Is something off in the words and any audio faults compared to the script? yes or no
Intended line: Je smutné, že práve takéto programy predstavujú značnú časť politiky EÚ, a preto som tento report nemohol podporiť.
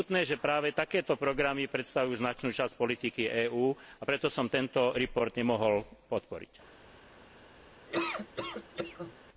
yes